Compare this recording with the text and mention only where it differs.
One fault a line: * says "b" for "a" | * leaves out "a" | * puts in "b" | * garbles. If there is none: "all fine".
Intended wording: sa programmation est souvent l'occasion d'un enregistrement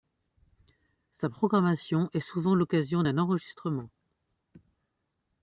all fine